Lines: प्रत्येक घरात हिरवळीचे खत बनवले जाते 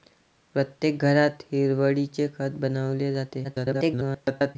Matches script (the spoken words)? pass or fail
fail